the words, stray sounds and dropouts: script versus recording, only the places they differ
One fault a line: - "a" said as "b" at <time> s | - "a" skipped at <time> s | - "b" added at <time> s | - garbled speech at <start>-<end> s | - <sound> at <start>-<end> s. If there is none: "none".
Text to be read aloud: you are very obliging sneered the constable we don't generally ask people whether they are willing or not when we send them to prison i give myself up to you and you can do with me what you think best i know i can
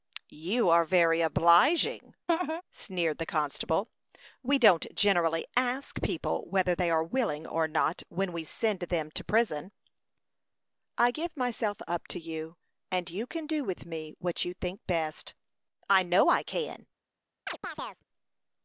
- laugh at 2.3-2.6 s
- chirp at 17.5-18.0 s